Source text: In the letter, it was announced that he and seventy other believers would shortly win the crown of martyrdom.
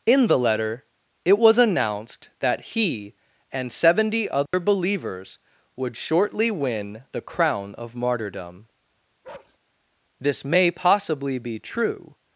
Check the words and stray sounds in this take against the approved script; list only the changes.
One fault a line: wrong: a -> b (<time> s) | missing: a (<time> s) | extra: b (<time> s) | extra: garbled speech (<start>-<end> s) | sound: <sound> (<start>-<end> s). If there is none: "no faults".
sound: dropout (4.5-4.5 s)
sound: bark (9.2-9.6 s)
extra: This may possibly be true (10.2 s)